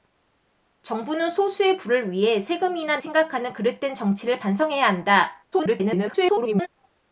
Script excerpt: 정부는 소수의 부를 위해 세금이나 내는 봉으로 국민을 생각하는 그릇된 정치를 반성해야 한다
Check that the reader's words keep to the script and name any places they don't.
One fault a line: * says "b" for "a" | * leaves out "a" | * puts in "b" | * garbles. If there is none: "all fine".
* leaves out "내는 봉으로 국민을"
* garbles